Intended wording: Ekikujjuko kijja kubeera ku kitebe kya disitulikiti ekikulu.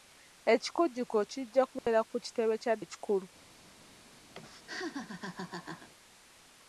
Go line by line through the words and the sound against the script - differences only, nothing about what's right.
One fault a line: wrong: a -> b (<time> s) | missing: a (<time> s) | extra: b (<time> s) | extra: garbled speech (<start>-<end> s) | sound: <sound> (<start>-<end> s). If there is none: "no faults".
sound: dropout (1.8-1.9 s)
missing: disitulikiti (2.7 s)
sound: laugh (4.3-5.9 s)